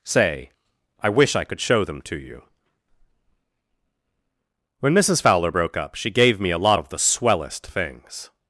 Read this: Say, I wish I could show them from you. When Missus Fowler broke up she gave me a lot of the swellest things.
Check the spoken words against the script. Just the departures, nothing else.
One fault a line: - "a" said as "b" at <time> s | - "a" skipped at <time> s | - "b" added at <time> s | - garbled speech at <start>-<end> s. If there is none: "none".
- "from" said as "to" at 2.0 s